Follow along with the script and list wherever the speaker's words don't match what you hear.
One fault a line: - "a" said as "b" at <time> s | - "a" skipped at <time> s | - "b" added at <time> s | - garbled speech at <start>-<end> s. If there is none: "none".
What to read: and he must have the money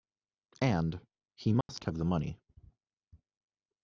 none